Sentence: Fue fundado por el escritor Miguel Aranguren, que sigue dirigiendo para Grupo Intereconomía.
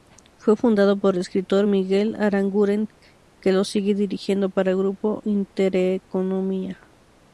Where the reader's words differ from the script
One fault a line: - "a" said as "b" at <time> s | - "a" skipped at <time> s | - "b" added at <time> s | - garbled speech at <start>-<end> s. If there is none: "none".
- "lo" added at 3.5 s